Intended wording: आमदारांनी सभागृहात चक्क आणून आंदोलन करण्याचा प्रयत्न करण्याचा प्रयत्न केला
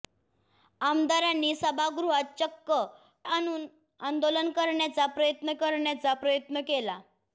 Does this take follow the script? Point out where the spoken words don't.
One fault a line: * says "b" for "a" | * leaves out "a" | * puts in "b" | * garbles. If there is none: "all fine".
all fine